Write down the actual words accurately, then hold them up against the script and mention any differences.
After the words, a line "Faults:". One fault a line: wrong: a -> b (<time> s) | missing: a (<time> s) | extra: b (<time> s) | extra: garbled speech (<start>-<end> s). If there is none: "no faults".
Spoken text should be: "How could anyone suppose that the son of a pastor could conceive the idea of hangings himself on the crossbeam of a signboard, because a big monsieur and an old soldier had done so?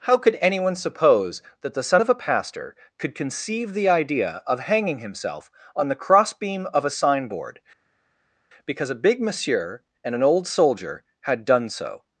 "How could anyone suppose that the son of a pastor could conceive the idea of hanging himself on the crossbeam of a signboard, because a big monsieur and an old soldier had done so?
Faults:
wrong: hangings -> hanging (4.6 s)